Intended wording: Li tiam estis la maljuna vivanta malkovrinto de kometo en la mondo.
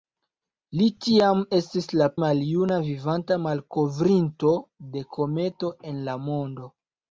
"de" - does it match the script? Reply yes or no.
yes